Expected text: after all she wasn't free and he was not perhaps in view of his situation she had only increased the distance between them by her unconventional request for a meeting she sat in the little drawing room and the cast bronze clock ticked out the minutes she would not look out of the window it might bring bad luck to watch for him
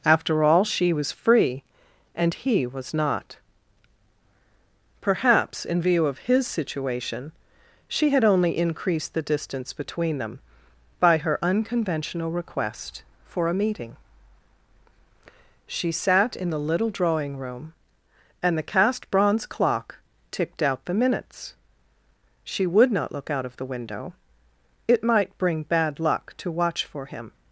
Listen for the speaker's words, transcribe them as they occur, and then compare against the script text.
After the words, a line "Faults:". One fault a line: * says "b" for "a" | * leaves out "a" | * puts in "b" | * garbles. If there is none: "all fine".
after all she was free and he was not perhaps in view of his situation she had only increased the distance between them by her unconventional request for a meeting she sat in the little drawing room and the cast bronze clock ticked out the minutes she would not look out of the window it might bring bad luck to watch for him
Faults:
* says "was" for "wasn't"